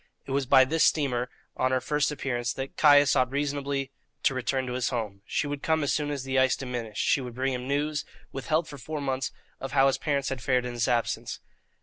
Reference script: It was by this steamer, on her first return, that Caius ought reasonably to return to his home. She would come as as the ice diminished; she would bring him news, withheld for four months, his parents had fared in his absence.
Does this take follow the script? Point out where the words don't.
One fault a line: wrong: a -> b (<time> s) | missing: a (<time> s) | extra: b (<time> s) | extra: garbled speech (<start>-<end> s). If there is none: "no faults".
wrong: return -> appearance (2.1 s)
extra: soon (5.9 s)
extra: of how (9.6 s)